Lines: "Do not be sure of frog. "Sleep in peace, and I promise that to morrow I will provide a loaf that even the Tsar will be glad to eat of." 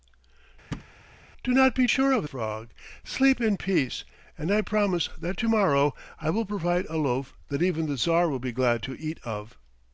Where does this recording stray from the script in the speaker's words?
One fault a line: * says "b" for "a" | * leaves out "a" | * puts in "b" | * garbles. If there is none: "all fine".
all fine